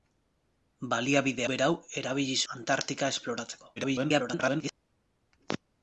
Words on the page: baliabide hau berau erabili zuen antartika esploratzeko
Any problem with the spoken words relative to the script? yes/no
yes